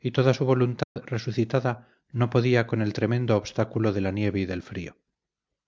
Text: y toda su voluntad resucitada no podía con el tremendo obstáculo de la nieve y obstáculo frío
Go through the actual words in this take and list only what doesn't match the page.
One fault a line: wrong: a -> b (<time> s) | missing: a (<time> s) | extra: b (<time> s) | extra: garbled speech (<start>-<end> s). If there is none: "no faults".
wrong: obstáculo -> del (4.5 s)